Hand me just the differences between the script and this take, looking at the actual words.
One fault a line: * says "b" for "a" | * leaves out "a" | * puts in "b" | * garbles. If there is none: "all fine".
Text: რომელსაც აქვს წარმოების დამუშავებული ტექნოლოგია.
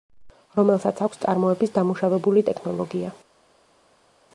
all fine